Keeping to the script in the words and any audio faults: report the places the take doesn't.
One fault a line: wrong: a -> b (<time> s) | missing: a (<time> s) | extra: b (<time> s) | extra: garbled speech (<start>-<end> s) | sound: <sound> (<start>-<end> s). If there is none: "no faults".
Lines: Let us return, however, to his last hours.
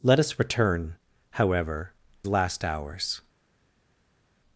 missing: to his (1.9 s)